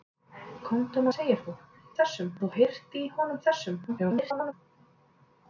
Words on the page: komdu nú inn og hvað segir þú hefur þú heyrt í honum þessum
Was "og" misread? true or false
true